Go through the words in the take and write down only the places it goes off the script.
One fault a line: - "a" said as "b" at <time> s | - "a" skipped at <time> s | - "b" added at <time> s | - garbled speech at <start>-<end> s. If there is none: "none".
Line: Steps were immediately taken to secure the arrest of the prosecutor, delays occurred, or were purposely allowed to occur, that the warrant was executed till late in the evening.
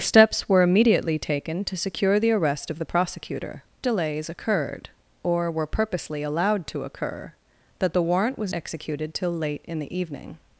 none